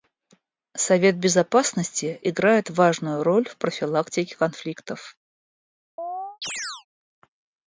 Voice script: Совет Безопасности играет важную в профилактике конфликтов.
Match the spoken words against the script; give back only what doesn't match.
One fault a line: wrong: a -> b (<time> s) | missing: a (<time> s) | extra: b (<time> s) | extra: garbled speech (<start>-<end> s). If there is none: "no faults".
extra: роль (3.2 s)